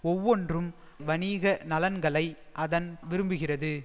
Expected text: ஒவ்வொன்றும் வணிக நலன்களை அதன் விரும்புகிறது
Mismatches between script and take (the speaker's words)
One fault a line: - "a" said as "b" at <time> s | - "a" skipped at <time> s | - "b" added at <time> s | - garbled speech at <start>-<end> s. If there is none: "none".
none